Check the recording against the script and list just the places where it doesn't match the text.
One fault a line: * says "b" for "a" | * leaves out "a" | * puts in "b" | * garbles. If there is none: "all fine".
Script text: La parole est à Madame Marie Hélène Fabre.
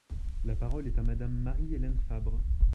all fine